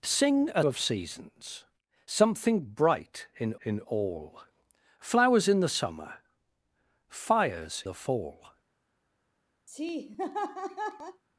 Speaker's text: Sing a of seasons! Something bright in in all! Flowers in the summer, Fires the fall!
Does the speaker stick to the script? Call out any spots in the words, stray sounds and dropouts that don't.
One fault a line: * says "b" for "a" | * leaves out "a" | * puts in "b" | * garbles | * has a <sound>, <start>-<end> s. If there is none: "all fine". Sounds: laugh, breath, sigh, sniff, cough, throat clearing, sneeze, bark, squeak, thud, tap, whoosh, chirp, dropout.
* has a laugh, 9.7-11.2 s